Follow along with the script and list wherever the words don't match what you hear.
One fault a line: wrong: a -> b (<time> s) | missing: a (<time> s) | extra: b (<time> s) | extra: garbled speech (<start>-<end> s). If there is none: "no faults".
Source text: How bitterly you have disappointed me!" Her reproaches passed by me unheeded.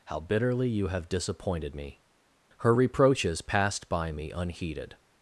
no faults